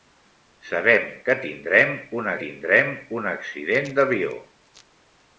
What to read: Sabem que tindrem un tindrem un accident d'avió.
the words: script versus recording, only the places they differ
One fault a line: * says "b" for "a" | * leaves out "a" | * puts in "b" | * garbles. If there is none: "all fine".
all fine